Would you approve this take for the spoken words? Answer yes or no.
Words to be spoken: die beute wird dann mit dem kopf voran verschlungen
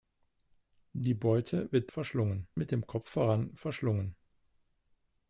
no